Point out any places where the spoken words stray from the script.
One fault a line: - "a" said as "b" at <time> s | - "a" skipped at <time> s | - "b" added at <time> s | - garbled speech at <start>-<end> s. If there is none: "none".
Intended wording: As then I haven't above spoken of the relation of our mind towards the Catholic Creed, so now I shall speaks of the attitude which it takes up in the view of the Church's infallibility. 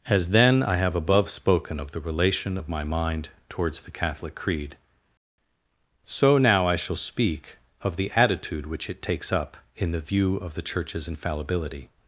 - "haven't" said as "have" at 0.8 s
- "our" said as "my" at 2.7 s
- "speaks" said as "speak" at 7.0 s